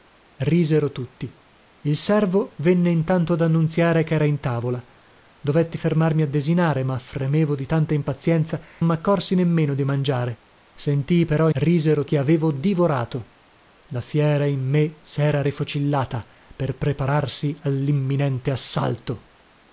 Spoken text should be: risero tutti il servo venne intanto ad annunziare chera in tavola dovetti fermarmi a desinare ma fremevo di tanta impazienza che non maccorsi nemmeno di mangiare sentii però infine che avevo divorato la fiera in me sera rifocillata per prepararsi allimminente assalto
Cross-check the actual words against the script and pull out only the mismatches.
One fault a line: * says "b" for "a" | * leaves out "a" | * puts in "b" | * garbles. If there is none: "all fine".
* leaves out "che non"
* says "risero" for "infine"